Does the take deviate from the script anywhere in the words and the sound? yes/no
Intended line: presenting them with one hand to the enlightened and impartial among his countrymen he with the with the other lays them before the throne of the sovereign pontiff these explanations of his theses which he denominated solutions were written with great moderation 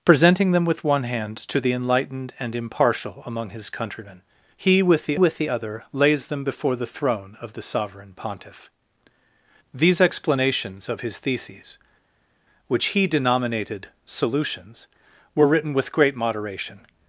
no